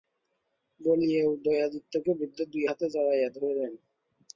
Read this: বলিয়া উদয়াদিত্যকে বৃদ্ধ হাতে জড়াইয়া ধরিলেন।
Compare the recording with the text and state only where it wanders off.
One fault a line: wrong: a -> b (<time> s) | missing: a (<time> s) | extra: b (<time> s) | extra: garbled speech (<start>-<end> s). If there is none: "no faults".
extra: দুই (2.5 s)